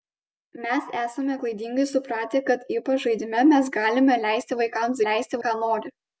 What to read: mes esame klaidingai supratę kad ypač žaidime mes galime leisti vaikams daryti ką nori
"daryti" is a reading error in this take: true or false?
true